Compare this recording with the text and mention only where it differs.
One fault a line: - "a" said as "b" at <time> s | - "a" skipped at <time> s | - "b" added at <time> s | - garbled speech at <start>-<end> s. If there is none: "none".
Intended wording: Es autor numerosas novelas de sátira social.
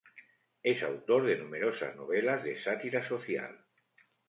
- "de" added at 1.3 s